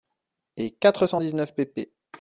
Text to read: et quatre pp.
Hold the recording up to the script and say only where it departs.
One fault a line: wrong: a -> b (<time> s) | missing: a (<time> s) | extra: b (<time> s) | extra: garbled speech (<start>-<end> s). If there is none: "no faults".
extra: cent dix neuf (1.0 s)